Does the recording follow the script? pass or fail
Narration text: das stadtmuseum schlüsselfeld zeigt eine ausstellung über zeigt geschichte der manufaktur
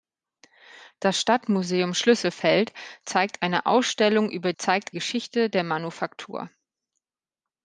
pass